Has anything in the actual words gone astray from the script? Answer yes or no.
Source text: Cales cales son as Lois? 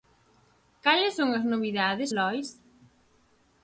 yes